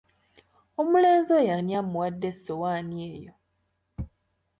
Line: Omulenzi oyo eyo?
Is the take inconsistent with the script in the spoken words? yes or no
yes